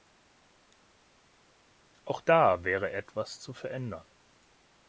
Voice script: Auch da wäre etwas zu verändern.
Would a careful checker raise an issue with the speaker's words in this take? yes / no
no